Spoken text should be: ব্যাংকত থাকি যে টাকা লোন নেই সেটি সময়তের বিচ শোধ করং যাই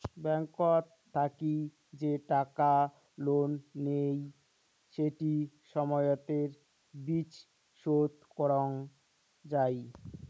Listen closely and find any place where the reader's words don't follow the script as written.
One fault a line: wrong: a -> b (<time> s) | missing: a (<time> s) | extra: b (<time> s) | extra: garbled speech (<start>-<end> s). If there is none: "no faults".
no faults